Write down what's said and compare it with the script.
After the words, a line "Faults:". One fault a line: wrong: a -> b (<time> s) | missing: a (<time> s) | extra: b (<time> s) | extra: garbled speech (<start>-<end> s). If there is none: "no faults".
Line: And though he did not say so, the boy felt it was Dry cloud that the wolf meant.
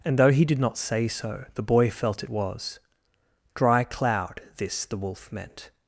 And though he did not say so, the boy felt it was Dry cloud this the wolf meant.
Faults:
wrong: that -> this (4.6 s)